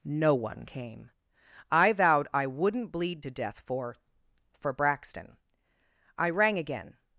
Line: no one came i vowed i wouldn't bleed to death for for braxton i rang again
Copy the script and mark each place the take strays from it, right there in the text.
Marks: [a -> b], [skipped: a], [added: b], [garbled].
no one came i vowed i wouldn't bleed to death for for braxton i rang again